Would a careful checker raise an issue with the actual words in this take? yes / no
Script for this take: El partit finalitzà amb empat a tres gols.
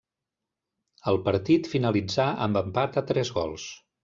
no